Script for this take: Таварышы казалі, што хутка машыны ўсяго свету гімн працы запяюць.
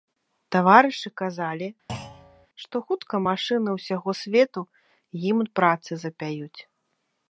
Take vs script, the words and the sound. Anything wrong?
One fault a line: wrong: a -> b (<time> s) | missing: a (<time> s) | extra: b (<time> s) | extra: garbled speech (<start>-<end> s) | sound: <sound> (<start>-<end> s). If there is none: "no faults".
sound: thud (1.9-2.5 s)